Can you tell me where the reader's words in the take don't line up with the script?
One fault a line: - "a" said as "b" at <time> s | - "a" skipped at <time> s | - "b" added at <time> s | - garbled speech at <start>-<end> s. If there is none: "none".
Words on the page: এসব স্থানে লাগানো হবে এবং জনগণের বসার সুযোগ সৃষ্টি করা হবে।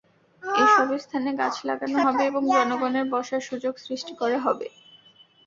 - "গাছ" added at 1.4 s